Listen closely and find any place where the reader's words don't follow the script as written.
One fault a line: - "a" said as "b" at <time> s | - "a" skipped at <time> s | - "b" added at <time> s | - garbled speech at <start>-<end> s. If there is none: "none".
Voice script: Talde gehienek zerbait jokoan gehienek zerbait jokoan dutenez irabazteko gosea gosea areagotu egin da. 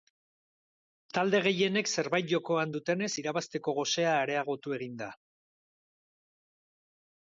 - "gehienek zerbait jokoan" skipped at 2.7 s
- "gosea" skipped at 4.1 s